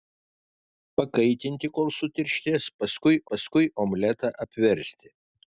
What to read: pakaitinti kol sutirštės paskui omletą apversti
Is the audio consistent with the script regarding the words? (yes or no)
no